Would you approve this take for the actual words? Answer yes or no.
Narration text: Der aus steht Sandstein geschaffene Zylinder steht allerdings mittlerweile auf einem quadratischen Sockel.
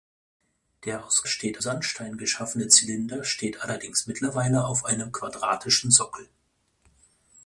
yes